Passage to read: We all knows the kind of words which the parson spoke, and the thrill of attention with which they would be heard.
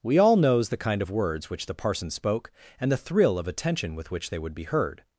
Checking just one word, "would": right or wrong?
right